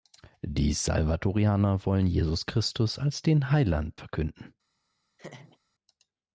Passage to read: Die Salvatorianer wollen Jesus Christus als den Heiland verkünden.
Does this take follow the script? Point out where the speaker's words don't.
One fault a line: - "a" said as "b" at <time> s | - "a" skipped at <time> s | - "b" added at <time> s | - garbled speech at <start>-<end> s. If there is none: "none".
none